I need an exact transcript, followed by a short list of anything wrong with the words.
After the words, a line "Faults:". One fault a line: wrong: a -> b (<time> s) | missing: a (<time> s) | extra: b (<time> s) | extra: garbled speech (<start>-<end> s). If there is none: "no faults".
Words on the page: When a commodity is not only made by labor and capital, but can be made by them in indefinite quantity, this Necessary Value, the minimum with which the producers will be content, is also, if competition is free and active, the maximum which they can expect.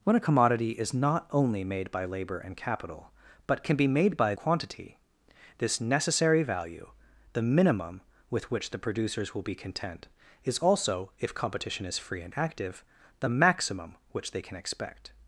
When a commodity is not only made by labor and capital, but can be made by quantity, this Necessary Value, the minimum with which the producers will be content, is also, if competition is free and active, the maximum which they can expect.
Faults:
missing: them in indefinite (4.3 s)